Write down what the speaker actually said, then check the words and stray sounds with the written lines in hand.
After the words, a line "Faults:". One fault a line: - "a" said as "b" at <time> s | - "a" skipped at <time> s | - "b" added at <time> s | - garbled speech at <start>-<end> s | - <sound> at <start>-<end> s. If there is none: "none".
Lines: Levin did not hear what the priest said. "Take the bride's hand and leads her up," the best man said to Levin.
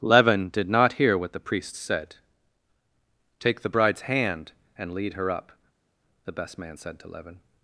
Levin did not hear what the priest said. "Take the bride's hand and lead her up," the best man said to Levin.
Faults:
- "leads" said as "lead" at 4.9 s